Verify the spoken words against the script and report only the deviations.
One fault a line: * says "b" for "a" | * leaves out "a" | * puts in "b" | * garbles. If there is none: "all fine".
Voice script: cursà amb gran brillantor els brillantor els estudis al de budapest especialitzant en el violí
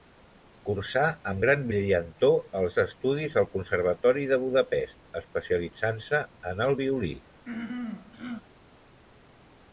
* leaves out "brillantor els"
* puts in "conservatori"
* puts in "se"